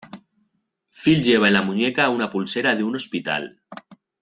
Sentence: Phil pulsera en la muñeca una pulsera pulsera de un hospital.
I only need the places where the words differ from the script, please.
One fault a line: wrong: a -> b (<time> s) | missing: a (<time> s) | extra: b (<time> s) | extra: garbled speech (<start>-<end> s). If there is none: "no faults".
wrong: pulsera -> lleva (1.2 s)
missing: pulsera (2.7 s)